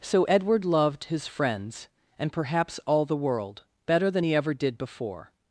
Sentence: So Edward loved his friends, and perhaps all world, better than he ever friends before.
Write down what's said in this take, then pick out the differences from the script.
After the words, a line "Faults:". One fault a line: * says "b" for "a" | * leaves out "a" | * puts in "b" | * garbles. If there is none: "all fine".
So Edward loved his friends, and perhaps all the world, better than he ever did before.
Faults:
* puts in "the"
* says "did" for "friends"